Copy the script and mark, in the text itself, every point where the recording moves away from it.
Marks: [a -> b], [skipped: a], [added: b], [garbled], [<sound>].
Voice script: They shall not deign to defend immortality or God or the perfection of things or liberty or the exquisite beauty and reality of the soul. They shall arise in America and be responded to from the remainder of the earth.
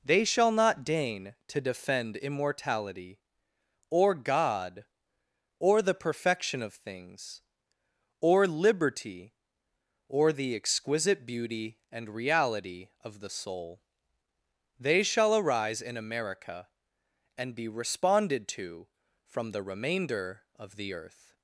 They shall not deign to defend immortality or God or the perfection of things or liberty or the exquisite beauty and reality of the soul. They shall arise in America and be responded to from the remainder of the earth.